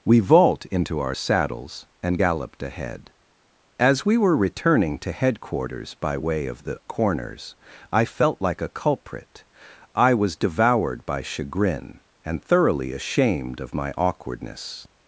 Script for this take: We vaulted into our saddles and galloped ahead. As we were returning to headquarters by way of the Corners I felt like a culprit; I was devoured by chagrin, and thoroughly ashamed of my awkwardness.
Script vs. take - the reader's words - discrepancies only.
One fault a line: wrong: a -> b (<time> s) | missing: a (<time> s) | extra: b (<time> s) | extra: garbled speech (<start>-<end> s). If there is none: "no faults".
wrong: vaulted -> vault (0.2 s)